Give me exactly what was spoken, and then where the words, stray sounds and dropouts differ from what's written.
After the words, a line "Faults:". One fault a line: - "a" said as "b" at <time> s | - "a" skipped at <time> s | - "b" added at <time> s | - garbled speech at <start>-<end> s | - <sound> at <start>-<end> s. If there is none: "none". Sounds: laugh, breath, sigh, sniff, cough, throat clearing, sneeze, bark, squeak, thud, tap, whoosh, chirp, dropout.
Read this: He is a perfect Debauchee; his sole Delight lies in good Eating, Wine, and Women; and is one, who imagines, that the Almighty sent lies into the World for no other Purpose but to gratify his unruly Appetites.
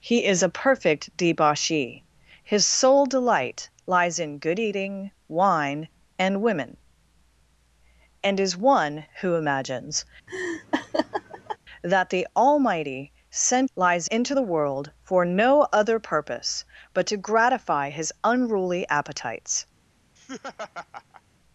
He is a perfect Debauchee; his sole Delight lies in good Eating, Wine, and Women; and is one, who imagines, that the Almighty sent lies into the World for no other Purpose but to gratify his unruly Appetites.
Faults:
- laugh at 10.3-11.6 s
- laugh at 20.2-21.2 s